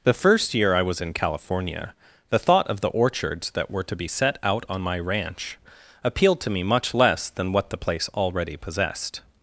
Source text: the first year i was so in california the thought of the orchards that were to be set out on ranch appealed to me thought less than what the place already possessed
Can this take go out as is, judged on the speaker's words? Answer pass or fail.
fail